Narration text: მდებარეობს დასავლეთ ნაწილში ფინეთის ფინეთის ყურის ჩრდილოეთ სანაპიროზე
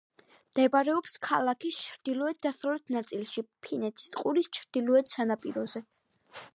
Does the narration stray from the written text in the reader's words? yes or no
yes